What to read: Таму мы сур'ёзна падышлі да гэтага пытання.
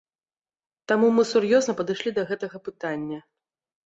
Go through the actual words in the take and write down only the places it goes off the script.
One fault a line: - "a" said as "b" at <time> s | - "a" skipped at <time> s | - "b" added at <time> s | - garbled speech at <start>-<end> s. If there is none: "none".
none